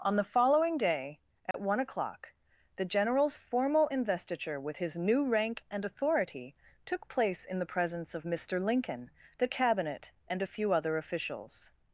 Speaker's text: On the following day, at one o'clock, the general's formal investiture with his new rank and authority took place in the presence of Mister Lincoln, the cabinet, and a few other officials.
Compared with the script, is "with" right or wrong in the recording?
right